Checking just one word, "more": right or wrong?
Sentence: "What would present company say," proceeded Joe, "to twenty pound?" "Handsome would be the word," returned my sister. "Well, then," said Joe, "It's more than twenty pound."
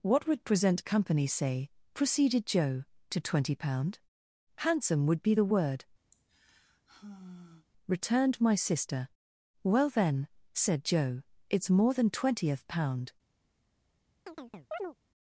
right